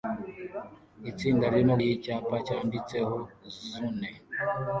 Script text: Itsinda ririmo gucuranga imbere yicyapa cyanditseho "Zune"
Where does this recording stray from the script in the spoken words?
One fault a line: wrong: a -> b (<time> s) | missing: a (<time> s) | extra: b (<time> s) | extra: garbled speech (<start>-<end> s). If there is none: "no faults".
missing: gucuranga imbere (1.8 s)